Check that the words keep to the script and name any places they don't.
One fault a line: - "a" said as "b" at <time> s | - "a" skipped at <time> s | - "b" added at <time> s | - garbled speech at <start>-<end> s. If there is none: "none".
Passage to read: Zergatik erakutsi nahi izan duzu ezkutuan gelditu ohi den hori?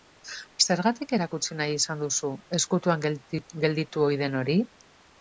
none